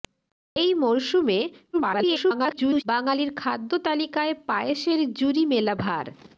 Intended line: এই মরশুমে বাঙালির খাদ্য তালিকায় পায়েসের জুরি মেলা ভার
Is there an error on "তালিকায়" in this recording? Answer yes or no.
no